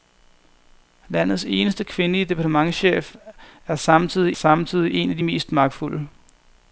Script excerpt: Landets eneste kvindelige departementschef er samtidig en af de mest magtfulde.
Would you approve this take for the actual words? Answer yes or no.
no